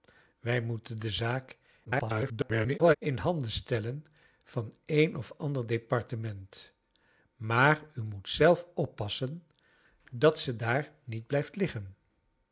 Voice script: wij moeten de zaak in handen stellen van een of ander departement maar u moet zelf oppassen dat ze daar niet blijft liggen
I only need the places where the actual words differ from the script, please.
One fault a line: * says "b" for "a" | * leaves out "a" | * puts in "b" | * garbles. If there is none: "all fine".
* garbles